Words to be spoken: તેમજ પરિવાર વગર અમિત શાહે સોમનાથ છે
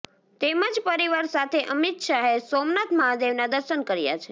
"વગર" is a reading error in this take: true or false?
true